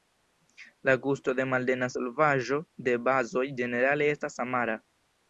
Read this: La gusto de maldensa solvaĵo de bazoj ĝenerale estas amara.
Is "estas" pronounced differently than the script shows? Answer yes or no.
no